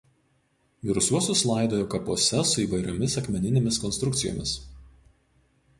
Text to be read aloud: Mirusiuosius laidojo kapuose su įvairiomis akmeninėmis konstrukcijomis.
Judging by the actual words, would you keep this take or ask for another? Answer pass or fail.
pass